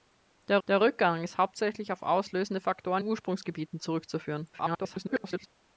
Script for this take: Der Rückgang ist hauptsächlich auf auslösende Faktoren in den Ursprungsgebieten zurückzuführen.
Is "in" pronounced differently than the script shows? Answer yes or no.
yes